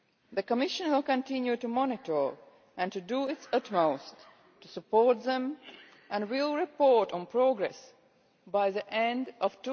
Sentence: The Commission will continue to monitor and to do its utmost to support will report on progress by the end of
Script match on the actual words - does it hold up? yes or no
no